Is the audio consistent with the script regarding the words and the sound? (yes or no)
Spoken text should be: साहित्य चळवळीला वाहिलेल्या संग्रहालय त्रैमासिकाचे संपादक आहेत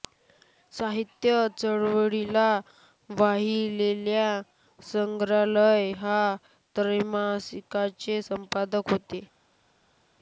no